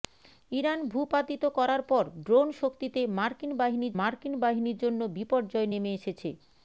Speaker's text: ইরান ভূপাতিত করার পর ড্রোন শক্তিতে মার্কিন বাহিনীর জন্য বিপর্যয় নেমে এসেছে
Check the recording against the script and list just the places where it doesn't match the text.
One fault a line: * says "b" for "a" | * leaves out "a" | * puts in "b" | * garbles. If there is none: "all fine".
* puts in "মার্কিন বাহিনীর"